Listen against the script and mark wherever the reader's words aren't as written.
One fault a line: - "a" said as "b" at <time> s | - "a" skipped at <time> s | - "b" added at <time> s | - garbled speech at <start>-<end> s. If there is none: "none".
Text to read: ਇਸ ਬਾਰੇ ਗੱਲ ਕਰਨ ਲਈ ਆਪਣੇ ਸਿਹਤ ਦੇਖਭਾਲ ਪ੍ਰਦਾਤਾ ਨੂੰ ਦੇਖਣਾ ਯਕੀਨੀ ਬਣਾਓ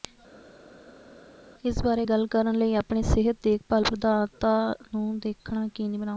none